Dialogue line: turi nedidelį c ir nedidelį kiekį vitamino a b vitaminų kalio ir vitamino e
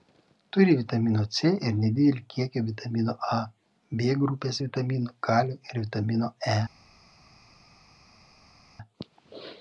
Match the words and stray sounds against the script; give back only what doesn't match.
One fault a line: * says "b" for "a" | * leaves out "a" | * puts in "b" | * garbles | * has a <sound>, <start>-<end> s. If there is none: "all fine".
* says "vitamino" for "nedidelį"
* puts in "grupės"